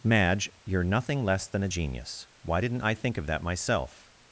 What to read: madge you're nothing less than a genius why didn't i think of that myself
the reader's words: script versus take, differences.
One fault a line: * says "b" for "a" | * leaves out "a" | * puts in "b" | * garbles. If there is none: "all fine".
all fine